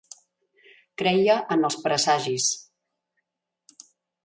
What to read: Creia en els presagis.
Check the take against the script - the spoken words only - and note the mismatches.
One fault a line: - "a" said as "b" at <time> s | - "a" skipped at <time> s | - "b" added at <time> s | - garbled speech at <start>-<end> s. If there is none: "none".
none